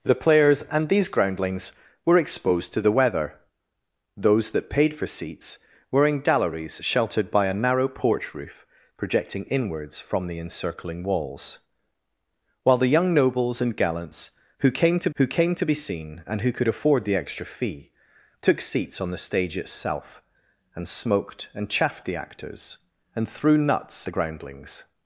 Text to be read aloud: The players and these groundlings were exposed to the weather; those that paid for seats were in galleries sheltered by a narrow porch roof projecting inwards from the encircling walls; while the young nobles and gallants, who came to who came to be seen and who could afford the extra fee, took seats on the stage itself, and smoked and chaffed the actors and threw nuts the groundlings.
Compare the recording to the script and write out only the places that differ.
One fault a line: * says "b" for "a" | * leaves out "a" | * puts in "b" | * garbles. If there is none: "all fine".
all fine